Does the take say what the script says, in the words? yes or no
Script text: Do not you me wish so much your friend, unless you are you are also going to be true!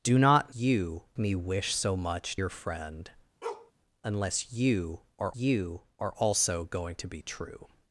yes